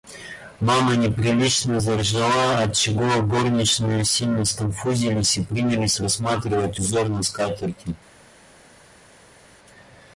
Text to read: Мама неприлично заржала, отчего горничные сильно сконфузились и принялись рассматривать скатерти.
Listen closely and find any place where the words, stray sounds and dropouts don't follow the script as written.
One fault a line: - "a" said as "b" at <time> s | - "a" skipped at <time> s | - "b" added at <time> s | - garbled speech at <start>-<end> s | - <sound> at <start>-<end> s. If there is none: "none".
- "узор на" added at 6.8 s